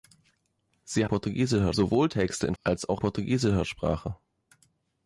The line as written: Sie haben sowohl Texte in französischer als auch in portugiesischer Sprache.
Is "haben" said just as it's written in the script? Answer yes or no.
no